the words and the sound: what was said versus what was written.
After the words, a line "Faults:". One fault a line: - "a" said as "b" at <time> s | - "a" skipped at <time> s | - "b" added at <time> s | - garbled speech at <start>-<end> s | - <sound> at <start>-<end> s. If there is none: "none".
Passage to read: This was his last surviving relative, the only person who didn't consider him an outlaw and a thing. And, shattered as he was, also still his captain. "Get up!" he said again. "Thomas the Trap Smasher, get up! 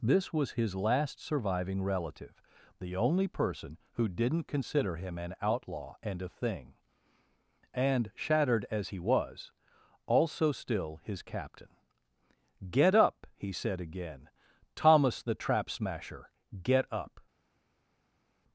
This was his last surviving relative, the only person who didn't consider him an outlaw and a thing. And, shattered as he was, also still his captain. "Get up!" he said again. "Thomas the Trap Smasher, get up!
Faults:
none